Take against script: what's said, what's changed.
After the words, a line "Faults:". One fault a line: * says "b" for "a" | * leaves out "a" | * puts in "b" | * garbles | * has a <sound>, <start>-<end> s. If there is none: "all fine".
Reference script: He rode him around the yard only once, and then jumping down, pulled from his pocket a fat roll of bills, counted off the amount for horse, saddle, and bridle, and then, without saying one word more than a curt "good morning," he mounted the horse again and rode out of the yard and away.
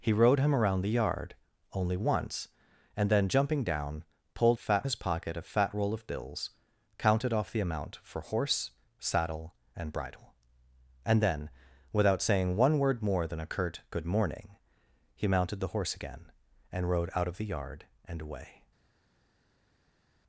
He rode him around the yard only once, and then jumping down, pulled fat his pocket a fat roll of bills, counted off the amount for horse, saddle, and bridle, and then, without saying one word more than a curt "good morning," he mounted the horse again and rode out of the yard and away.
Faults:
* says "fat" for "from"